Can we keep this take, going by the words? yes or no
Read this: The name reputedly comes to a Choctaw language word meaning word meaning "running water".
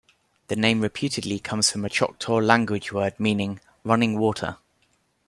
no